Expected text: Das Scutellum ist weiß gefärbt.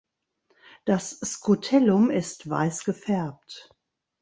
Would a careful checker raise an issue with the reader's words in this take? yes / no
no